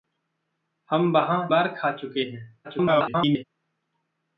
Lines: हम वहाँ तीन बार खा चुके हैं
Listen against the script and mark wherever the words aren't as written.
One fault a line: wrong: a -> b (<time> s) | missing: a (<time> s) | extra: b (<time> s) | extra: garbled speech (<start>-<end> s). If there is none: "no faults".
missing: तीन (1.5 s)
extra: garbled speech (2.6-3.4 s)